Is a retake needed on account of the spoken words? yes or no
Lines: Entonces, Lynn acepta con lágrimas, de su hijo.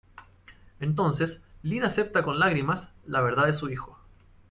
yes